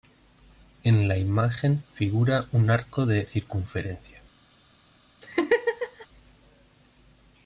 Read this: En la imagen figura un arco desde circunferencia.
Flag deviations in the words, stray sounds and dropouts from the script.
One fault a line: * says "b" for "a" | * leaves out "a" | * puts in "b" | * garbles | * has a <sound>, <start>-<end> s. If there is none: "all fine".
* says "de" for "desde"
* has a laugh, 5.2-6.1 s